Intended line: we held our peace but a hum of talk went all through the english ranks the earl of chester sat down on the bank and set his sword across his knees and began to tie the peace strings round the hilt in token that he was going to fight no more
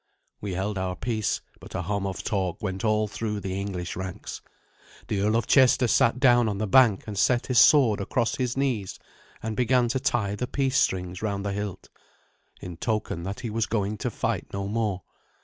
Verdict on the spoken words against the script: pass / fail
pass